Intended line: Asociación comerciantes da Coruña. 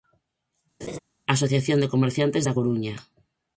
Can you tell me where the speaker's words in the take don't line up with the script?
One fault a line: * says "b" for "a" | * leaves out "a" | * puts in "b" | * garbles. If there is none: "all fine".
* puts in "de"